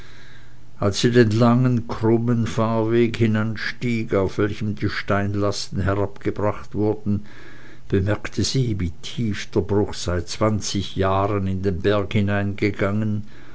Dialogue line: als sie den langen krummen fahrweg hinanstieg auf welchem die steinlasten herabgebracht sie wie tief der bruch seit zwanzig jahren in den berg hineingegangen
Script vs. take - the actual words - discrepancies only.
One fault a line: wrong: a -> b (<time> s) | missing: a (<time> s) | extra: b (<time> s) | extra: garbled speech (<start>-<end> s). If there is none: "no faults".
extra: wurden bemerkte (6.7 s)